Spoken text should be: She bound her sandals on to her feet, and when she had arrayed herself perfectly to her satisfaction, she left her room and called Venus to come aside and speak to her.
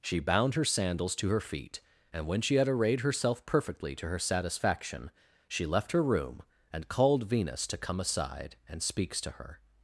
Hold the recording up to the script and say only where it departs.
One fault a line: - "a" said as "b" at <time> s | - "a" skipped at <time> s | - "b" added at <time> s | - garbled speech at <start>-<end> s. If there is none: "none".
- "on" skipped at 1.1 s
- "speak" said as "speaks" at 8.8 s